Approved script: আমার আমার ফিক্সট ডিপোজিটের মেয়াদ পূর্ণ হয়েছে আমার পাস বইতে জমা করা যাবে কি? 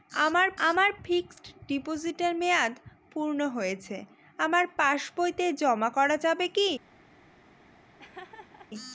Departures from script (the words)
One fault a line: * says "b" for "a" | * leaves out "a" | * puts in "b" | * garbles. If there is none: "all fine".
all fine